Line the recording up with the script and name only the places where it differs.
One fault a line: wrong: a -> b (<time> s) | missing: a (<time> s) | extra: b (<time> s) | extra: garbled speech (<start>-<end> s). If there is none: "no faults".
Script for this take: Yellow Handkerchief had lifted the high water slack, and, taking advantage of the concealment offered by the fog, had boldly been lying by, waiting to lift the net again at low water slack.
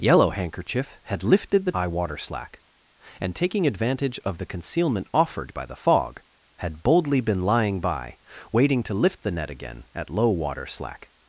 no faults